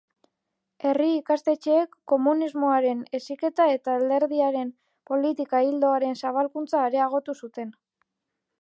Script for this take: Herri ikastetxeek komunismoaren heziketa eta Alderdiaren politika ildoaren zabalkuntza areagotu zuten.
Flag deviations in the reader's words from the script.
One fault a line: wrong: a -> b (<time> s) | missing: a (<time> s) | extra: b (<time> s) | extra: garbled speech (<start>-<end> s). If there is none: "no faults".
no faults